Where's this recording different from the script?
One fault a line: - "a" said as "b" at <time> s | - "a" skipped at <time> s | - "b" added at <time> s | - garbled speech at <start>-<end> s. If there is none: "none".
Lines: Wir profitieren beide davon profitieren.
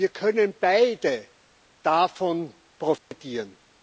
- "profitieren" said as "können" at 0.1 s